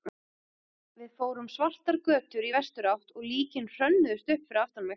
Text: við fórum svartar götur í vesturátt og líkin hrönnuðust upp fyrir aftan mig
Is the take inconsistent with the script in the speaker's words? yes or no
no